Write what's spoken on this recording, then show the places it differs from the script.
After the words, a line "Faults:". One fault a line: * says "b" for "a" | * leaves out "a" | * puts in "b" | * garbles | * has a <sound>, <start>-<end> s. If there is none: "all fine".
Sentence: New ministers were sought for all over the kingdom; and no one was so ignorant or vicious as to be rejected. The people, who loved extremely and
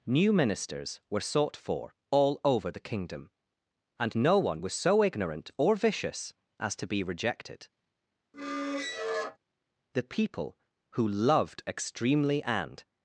New ministers were sought for all over the kingdom; and no one was so ignorant or vicious as to be rejected. The people, who loved extremely and
Faults:
* has a squeak, 8.3-9.4 s